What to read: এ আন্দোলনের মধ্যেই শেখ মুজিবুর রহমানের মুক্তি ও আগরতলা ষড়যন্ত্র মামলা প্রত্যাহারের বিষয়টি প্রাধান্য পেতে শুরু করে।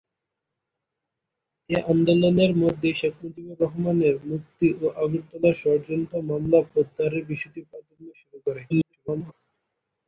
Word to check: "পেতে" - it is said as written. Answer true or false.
false